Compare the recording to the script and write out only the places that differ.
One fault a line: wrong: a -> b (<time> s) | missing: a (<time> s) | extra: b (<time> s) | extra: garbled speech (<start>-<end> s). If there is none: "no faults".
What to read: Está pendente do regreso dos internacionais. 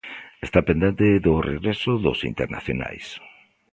no faults